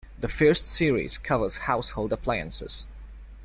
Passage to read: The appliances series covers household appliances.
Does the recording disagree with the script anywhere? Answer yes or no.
yes